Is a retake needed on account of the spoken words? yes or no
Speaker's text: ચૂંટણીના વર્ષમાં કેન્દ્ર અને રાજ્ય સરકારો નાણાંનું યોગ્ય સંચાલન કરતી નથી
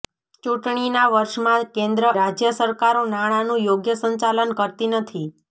yes